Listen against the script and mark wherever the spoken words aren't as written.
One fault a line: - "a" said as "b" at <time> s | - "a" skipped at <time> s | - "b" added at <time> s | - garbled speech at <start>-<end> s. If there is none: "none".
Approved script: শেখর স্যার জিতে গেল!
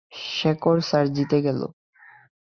none